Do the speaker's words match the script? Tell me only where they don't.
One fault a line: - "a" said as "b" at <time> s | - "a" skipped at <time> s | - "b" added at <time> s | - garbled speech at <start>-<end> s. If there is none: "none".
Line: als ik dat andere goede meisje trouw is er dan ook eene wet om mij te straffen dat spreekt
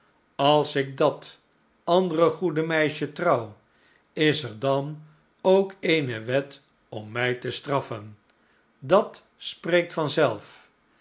none